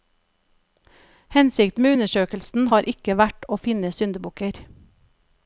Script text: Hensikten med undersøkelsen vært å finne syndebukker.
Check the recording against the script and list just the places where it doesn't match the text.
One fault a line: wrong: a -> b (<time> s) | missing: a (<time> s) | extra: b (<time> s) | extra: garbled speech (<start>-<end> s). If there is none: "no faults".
extra: har ikke (2.7 s)